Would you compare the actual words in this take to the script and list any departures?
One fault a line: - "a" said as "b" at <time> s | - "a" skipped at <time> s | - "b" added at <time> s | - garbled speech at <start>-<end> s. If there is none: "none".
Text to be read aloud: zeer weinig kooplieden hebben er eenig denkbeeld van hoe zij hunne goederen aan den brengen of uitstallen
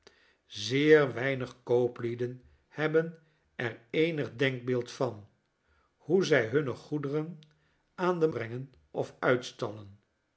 none